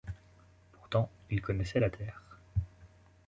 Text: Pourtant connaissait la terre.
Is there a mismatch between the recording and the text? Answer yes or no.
yes